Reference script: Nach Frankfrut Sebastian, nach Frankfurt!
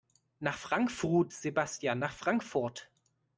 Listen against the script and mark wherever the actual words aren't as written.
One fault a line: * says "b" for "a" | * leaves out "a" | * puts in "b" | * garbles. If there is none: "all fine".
all fine